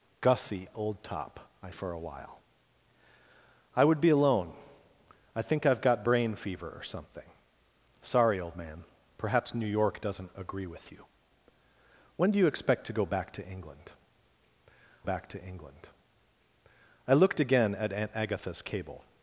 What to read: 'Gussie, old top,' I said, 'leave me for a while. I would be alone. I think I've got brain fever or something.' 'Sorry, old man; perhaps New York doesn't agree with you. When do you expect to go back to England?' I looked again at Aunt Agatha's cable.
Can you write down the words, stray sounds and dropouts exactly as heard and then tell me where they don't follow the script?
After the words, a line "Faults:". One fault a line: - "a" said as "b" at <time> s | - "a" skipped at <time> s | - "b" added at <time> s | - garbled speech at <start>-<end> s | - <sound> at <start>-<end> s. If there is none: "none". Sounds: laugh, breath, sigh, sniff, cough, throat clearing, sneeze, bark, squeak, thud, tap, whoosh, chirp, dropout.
'Gussie, old top,' I for a while. I would be alone. I think I've got brain fever or something.' 'Sorry, old man; perhaps New York doesn't agree with you. When do you expect to go back to England back to England?' I looked again at Aunt Agatha's cable.
Faults:
- "said leave me" skipped at 1.7 s
- "back to England" added at 15.0 s